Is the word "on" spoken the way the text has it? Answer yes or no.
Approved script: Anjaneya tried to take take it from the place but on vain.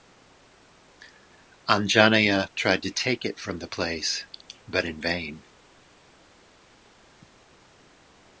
no